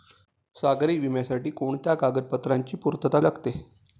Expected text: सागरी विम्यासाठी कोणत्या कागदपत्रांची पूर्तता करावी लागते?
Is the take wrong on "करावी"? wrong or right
wrong